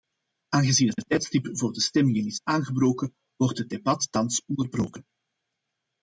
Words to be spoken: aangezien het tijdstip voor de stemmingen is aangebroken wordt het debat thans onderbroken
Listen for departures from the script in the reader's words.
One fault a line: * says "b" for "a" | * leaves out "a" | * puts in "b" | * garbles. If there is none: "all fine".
* puts in "het"